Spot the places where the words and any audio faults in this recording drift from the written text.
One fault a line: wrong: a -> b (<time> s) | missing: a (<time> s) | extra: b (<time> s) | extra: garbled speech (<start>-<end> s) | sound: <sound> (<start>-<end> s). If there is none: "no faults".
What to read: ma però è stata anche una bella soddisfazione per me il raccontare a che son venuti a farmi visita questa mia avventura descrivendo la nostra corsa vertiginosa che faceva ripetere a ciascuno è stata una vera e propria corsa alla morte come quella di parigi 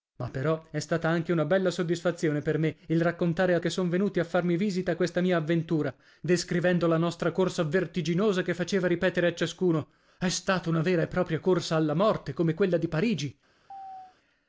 sound: chirp (13.7-14.2 s)